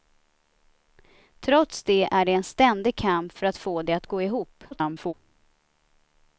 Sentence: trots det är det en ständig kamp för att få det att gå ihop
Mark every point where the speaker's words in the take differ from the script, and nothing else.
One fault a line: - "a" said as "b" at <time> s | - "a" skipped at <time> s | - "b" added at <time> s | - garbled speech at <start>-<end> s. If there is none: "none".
- garbled speech at 4.7-5.1 s